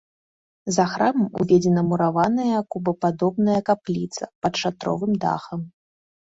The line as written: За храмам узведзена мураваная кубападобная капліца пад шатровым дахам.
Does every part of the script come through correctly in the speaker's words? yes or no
yes